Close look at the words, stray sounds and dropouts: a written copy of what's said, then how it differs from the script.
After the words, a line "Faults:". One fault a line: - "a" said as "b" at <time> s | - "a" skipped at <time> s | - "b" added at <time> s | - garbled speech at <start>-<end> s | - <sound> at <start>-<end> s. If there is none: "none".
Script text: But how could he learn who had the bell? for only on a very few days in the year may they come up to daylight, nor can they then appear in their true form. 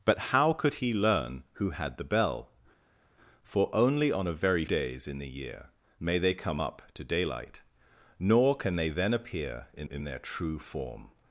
But how could he learn who had the bell? for only on a very days in the year may they come up to daylight, nor can they then appear in in their true form.
Faults:
- "few" skipped at 4.6 s
- "in" added at 9.9 s